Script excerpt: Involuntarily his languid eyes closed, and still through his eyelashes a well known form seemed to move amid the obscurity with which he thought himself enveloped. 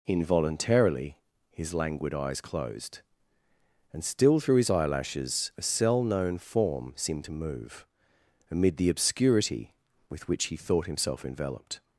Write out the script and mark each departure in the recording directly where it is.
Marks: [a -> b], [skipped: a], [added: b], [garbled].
Involuntarily his languid eyes closed, and still through his eyelashes a [well -> cell] known form seemed to move amid the obscurity with which he thought himself enveloped.